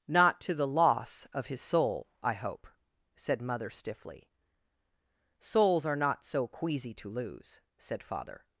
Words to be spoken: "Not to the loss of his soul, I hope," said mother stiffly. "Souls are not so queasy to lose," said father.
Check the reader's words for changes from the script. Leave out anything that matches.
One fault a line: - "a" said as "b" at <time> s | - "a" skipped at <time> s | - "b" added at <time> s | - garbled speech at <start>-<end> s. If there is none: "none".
none